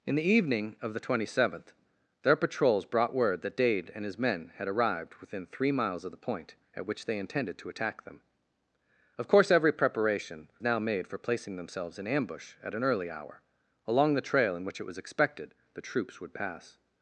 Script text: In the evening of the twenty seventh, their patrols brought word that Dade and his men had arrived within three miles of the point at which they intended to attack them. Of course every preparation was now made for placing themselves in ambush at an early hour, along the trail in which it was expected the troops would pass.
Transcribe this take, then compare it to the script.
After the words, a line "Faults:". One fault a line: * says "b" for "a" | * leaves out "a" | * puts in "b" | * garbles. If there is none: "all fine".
In the evening of the twenty seventh, their patrols brought word that Dade and his men had arrived within three miles of the point at which they intended to attack them. Of course every preparation now made for placing themselves in ambush at an early hour, along the trail in which it was expected the troops would pass.
Faults:
* leaves out "was"